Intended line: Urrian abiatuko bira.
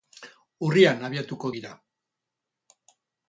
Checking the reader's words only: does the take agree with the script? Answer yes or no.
yes